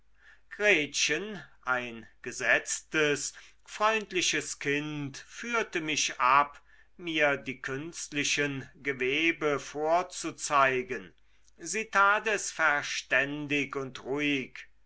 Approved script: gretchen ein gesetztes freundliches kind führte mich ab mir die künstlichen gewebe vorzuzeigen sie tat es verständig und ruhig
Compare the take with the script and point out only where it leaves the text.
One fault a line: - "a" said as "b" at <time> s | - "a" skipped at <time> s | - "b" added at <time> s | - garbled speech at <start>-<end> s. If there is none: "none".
none